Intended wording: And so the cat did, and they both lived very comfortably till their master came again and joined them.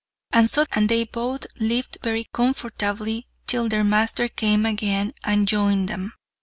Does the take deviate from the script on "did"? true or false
true